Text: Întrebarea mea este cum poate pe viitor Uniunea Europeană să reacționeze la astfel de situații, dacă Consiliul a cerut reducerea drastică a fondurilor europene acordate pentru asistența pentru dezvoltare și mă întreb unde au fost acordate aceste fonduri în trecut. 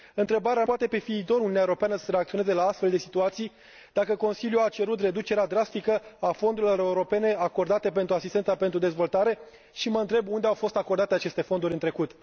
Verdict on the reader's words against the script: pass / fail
fail